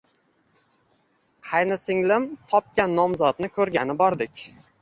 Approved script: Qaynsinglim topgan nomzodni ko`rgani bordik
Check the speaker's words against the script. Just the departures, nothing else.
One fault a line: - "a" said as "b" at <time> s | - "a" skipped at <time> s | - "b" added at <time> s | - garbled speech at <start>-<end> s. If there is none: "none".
none